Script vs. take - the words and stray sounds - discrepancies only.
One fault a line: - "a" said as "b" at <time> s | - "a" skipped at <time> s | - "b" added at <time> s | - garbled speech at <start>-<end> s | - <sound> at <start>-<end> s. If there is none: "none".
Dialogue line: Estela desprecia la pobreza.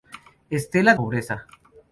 - "desprecia la" skipped at 0.9 s